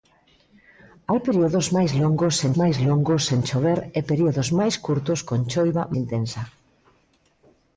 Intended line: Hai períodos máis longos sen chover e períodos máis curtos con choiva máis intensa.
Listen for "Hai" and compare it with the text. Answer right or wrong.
right